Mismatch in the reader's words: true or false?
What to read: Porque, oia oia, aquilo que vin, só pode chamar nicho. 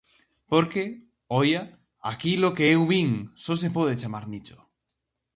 true